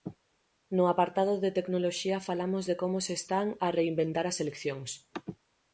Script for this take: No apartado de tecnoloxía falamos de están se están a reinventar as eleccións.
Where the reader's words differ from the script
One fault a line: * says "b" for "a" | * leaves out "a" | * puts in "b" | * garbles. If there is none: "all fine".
* says "como" for "están"